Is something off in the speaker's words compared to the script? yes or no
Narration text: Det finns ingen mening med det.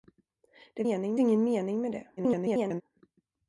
yes